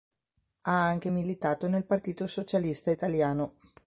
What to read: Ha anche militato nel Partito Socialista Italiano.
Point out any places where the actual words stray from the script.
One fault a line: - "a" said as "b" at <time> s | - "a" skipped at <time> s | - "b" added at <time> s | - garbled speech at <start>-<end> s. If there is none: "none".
none